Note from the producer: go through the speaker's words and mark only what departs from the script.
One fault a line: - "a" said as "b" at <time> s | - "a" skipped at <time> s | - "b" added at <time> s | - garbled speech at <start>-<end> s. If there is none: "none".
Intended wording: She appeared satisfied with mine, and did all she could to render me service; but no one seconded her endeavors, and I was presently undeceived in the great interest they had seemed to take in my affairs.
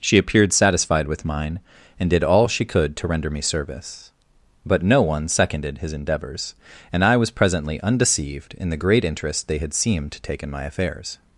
- "her" said as "his" at 5.8 s